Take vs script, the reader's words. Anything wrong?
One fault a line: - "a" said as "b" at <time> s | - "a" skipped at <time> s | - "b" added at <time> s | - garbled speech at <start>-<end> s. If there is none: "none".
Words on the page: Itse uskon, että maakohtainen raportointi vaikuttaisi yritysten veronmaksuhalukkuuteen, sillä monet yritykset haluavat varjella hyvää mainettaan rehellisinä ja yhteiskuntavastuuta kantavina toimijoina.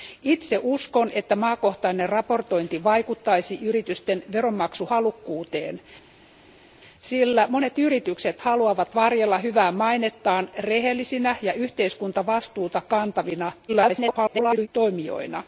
- garbled speech at 13.7-14.7 s